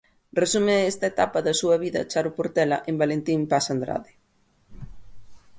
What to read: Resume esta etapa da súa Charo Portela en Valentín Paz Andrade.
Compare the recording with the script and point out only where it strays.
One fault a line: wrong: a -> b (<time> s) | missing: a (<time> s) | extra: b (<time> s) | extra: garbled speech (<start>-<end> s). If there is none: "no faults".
extra: vida (1.8 s)